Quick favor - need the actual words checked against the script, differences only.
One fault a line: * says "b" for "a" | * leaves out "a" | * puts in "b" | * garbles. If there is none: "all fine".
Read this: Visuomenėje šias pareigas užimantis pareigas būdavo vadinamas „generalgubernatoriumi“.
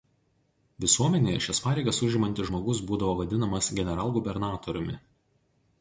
* says "žmogus" for "pareigas"